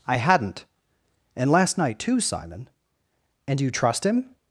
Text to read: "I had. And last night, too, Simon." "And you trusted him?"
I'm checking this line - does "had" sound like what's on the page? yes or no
no